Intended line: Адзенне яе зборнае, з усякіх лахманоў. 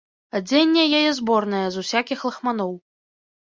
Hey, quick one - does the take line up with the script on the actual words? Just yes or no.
yes